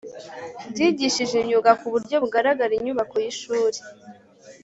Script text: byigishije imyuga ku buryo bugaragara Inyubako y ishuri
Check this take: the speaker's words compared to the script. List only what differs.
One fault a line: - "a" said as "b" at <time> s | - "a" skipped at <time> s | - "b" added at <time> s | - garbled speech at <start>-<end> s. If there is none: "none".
none